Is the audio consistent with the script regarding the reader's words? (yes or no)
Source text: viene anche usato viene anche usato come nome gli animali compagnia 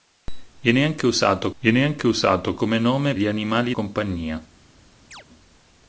yes